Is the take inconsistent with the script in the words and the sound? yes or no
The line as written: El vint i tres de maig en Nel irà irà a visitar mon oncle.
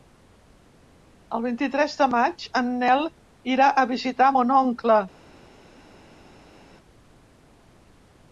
yes